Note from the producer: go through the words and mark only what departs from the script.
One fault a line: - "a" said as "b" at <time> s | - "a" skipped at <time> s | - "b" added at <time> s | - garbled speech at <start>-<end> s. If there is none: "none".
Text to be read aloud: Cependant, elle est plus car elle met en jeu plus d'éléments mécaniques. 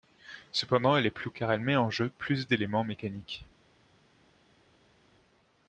none